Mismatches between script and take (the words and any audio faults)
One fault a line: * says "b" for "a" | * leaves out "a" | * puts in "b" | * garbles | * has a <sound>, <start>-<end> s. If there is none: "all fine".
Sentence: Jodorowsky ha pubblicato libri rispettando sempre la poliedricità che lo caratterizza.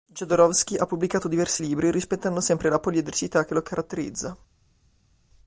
* puts in "diversi"